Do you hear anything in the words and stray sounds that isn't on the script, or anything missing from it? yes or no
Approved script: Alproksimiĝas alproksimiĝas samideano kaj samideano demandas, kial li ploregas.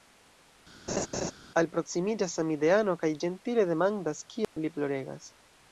yes